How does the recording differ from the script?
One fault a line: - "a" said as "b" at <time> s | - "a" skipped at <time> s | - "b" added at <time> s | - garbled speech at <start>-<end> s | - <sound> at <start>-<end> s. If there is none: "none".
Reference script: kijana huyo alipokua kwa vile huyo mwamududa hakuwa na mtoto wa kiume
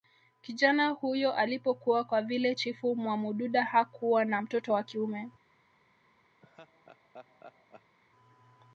- "huyo" said as "chifu" at 2.5 s
- laugh at 6.4-8.0 s